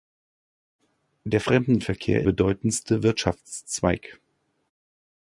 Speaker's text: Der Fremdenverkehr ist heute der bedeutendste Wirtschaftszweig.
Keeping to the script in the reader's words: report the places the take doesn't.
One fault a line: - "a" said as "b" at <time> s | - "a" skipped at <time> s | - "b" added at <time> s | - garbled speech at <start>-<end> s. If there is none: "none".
- "ist heute der" skipped at 2.2 s